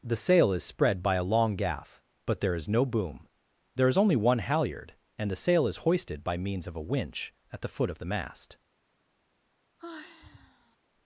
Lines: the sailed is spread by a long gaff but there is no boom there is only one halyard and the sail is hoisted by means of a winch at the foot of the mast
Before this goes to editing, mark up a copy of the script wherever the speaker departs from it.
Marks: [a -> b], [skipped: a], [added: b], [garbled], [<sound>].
the [sailed -> sail] is spread by a long gaff but there is no boom there is only one halyard and the sail is hoisted by means of a winch at the foot of the mast [sigh]